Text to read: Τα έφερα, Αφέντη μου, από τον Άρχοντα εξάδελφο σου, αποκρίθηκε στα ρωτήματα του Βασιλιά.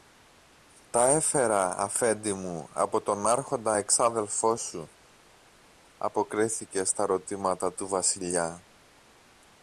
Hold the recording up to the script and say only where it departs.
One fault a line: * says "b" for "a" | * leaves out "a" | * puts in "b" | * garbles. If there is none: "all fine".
all fine